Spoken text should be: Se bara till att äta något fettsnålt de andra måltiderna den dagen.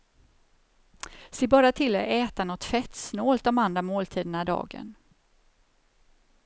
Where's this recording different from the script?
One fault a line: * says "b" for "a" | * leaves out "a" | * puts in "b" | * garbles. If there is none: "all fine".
* leaves out "den"